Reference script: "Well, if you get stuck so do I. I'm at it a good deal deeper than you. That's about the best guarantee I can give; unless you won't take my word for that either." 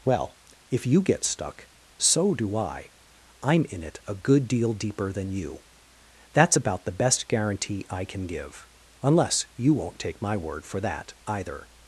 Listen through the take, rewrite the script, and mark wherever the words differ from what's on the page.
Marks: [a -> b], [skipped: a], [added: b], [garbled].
"Well, if you get stuck so do I. I'm [at -> in] it a good deal deeper than you. That's about the best guarantee I can give; unless you won't take my word for that either."